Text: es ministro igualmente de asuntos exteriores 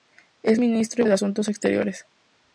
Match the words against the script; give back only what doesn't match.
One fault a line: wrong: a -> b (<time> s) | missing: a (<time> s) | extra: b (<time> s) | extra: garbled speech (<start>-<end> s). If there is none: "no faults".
missing: igualmente (1.0 s)